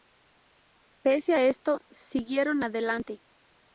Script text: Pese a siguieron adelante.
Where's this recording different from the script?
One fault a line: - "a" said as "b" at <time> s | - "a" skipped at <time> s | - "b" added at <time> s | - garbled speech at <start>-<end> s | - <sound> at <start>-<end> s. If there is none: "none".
- "esto" added at 1.4 s